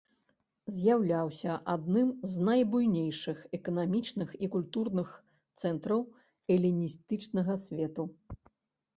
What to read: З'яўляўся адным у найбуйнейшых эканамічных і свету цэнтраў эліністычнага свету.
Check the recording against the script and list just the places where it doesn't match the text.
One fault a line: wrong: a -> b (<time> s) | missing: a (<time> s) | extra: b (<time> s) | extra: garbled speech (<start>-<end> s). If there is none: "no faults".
wrong: у -> з (2.4 s)
wrong: свету -> культурных (4.5 s)